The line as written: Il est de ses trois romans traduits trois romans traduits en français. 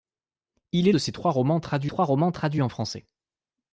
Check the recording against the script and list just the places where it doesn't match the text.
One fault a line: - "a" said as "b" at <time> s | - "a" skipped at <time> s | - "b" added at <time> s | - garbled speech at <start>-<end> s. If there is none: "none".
none